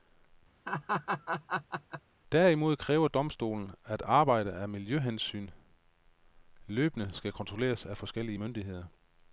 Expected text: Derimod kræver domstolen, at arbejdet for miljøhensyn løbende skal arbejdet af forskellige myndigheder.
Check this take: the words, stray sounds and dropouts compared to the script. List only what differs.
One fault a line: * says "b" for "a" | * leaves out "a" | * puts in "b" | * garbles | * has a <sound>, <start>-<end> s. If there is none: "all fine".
* has a laugh, 0.7-2.0 s
* says "af" for "for"
* says "kontrolleres" for "arbejdet"